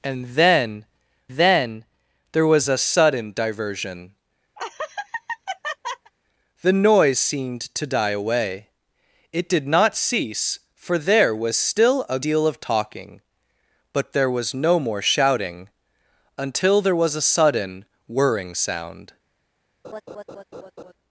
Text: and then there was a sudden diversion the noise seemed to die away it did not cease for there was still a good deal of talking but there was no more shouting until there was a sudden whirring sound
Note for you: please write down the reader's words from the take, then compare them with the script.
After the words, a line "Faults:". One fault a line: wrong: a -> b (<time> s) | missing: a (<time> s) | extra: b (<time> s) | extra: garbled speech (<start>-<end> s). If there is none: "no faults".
and then then there was a sudden diversion the noise seemed to die away it did not cease for there was still a deal of talking but there was no more shouting until there was a sudden whirring sound
Faults:
extra: then (1.3 s)
missing: good (12.2 s)